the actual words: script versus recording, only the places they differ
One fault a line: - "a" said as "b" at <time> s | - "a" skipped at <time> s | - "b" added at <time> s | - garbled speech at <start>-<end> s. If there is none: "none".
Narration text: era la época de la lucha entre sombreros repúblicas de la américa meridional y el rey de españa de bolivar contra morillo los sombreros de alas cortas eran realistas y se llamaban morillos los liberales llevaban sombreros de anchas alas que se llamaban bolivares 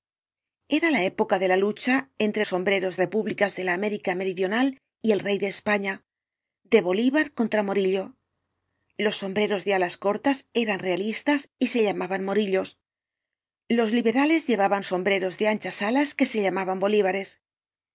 none